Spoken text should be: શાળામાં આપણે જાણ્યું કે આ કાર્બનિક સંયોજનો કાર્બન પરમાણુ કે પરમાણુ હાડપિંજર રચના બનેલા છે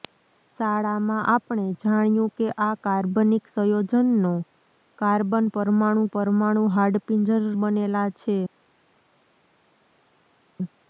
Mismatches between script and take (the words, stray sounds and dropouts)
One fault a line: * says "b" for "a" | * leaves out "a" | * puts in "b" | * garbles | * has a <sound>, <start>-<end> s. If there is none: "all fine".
* leaves out "કે"
* leaves out "રચના"